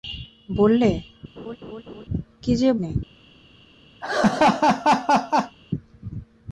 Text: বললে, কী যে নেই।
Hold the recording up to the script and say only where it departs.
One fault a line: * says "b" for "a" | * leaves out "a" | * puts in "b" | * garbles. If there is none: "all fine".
all fine